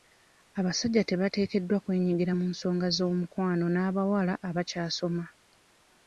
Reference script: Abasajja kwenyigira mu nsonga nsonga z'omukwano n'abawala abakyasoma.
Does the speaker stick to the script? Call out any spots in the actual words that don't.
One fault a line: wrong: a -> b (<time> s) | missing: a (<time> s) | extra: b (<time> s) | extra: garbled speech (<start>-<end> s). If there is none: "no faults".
extra: tebateekeddwa (1.1 s)
missing: nsonga (2.9 s)